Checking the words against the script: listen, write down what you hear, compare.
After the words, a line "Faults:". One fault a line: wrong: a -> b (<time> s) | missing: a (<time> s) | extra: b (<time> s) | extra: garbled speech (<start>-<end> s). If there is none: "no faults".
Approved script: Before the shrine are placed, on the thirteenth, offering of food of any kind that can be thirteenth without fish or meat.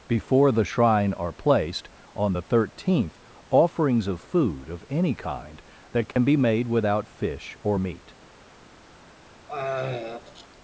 Before the shrine are placed, on the thirteenth, offerings of food of any kind that can be made without fish or meat.
Faults:
wrong: offering -> offerings (3.5 s)
wrong: thirteenth -> made (6.4 s)